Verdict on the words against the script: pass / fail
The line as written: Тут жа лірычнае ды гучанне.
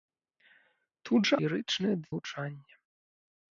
pass